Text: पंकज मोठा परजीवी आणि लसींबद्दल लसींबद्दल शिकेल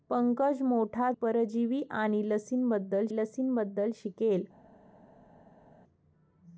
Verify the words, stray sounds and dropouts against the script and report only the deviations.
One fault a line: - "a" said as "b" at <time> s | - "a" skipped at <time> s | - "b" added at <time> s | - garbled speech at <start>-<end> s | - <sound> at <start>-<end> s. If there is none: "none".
none